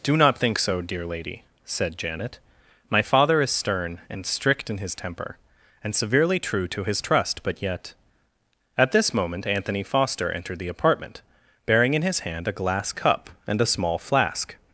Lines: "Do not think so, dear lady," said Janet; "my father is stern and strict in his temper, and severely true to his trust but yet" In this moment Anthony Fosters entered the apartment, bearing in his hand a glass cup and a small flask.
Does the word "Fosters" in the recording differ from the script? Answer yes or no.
yes